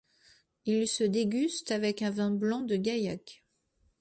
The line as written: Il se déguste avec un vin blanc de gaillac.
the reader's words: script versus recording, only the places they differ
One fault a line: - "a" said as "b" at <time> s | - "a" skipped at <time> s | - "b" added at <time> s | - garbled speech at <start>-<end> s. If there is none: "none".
none